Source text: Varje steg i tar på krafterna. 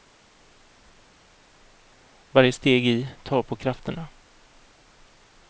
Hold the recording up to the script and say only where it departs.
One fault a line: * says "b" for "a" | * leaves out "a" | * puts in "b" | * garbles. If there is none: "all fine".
all fine